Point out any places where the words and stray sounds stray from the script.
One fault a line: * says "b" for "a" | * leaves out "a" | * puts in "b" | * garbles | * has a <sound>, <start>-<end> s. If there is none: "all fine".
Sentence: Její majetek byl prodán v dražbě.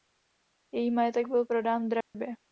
* has a dropout, 2.0-2.1 s